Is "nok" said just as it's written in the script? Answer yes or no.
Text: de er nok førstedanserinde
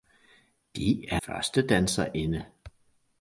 no